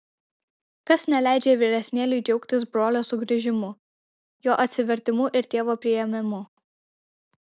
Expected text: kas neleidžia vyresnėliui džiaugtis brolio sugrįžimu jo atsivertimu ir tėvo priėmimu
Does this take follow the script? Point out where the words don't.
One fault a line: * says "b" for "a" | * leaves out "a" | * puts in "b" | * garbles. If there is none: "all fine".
all fine